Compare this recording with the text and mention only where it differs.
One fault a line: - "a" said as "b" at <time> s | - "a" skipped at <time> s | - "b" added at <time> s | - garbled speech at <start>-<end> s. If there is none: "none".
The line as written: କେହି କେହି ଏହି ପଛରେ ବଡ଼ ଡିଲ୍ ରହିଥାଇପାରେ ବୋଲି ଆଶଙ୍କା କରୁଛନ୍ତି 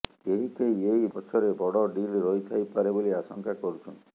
none